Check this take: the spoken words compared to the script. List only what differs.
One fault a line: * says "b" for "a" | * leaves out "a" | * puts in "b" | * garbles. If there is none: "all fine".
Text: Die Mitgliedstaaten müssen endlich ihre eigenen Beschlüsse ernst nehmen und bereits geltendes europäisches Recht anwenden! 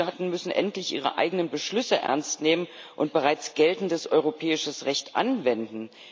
all fine